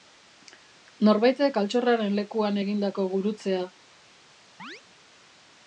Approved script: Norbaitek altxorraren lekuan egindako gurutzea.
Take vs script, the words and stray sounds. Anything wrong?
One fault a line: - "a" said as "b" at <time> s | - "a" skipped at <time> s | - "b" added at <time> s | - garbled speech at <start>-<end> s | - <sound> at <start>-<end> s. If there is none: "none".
- chirp at 4.6-4.8 s